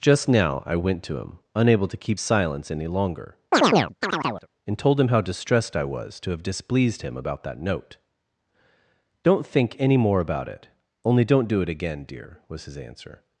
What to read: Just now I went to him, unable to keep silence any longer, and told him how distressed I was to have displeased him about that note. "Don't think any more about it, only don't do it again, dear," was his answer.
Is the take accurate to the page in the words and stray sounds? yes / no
no